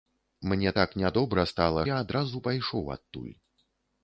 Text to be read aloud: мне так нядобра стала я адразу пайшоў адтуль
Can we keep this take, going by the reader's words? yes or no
yes